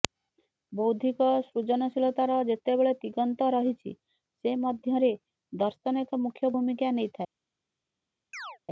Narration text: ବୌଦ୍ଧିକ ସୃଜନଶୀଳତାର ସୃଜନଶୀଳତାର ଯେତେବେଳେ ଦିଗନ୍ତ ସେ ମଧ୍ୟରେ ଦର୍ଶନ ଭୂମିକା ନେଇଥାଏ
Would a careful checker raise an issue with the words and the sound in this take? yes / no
yes